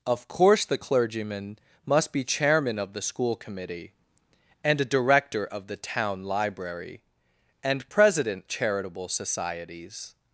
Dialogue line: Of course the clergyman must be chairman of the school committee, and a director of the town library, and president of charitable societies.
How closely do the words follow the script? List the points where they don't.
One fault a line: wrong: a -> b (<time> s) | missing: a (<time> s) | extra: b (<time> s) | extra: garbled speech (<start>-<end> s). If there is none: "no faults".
missing: of (8.5 s)